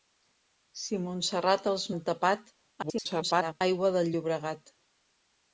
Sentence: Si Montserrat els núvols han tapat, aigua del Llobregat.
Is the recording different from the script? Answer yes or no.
yes